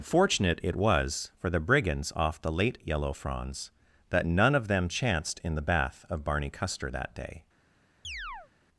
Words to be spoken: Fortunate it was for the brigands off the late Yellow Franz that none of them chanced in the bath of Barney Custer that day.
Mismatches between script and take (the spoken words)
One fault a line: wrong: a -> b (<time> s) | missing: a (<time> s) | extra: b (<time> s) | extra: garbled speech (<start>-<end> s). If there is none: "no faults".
no faults